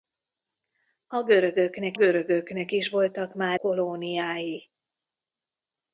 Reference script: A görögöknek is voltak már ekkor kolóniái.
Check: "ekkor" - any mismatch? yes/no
yes